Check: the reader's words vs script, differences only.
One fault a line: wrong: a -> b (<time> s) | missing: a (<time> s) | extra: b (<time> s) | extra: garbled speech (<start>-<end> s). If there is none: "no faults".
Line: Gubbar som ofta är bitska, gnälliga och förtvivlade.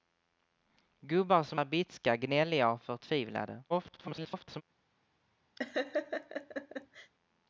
missing: ofta (1.6 s)
extra: garbled speech (3.7-4.6 s)